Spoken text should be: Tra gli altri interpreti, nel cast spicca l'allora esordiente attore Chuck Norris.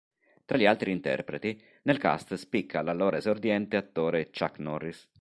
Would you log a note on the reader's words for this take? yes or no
no